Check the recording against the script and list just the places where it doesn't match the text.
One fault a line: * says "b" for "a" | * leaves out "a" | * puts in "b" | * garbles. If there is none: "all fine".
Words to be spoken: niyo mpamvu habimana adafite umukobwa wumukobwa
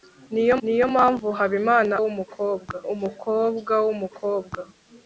* puts in "niyo"
* says "wumukobwa" for "adafite"